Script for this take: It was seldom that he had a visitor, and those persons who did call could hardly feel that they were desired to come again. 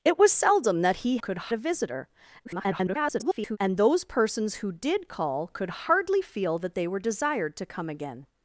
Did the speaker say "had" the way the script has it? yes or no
no